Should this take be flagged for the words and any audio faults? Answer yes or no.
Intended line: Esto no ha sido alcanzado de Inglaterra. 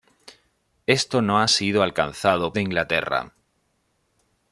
no